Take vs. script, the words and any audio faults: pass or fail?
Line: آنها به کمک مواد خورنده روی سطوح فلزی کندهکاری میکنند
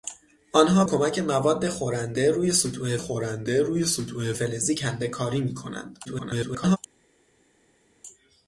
fail